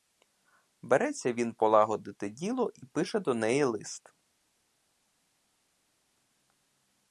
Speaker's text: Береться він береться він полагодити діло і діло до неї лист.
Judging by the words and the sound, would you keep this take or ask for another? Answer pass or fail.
fail